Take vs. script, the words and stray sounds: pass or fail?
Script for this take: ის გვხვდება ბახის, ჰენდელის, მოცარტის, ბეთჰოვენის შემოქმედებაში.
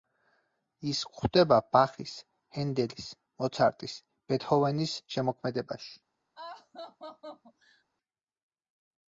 fail